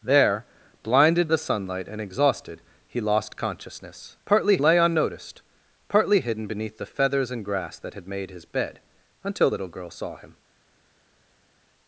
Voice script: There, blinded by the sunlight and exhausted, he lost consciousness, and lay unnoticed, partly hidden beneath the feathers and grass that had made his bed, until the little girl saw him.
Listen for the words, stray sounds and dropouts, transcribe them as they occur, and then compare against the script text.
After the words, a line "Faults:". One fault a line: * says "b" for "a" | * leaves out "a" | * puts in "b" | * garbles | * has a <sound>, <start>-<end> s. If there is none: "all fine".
There, blinded the sunlight and exhausted, he lost consciousness, partly lay unnoticed, partly hidden beneath the feathers and grass that had made his bed, until little girl saw him.
Faults:
* leaves out "by"
* says "partly" for "and"
* leaves out "the"